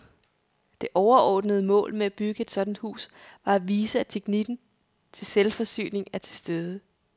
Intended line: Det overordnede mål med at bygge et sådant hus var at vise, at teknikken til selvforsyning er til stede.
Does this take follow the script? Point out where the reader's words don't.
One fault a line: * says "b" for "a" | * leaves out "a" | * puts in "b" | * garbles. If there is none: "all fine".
all fine